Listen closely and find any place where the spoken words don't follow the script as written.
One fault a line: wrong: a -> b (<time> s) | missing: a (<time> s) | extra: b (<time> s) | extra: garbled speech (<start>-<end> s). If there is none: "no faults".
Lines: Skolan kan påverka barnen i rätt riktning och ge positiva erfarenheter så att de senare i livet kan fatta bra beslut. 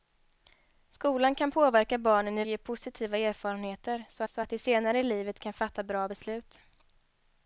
missing: rätt riktning och (2.5 s)
extra: så (4.3 s)